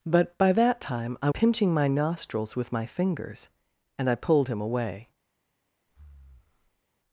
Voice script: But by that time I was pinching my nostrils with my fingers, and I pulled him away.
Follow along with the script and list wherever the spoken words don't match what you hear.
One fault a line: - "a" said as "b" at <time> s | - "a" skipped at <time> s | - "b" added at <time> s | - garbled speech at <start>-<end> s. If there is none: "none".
- "was" skipped at 1.3 s